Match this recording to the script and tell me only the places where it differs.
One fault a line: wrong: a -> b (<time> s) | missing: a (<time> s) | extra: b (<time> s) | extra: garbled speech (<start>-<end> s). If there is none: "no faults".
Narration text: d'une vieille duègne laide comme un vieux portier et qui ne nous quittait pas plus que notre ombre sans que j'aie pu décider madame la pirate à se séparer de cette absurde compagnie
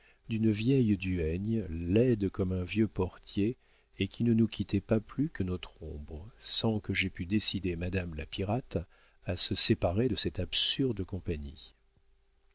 no faults